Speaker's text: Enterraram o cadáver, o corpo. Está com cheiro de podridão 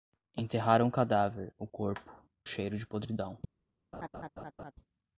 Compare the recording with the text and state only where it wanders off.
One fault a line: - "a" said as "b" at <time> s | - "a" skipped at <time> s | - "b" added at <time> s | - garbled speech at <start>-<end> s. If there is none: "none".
- "Está com" skipped at 2.1 s